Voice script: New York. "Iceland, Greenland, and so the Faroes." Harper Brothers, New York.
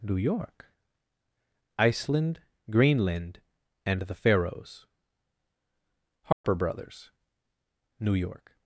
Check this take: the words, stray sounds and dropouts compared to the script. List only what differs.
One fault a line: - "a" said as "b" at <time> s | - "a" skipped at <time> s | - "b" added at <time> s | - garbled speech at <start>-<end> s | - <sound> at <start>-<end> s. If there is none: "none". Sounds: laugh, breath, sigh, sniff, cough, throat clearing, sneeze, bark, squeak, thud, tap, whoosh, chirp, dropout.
- "so" skipped at 4.0 s
- dropout at 6.3-6.4 s